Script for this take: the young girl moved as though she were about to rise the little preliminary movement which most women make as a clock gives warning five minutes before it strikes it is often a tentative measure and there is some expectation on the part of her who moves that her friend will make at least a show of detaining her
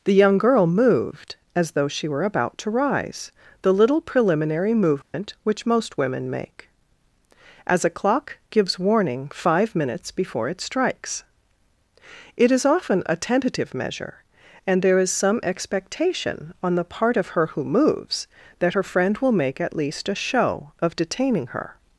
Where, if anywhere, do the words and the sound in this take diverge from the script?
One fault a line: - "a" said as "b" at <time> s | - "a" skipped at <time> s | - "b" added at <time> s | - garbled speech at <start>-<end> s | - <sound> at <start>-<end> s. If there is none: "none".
- dropout at 5.0-5.1 s